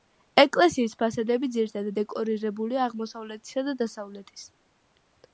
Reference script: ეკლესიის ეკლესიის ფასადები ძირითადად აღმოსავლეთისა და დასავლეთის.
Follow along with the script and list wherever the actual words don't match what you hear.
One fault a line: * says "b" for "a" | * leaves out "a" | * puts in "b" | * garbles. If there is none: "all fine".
* leaves out "ეკლესიის"
* puts in "დეკორირებულია"